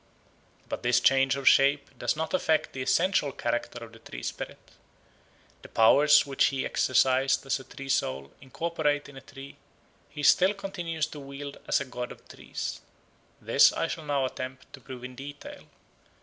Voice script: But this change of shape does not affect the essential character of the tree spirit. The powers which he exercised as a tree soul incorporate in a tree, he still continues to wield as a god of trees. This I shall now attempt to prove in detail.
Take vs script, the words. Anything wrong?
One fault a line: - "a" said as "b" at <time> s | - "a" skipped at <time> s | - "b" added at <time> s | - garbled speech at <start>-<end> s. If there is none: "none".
none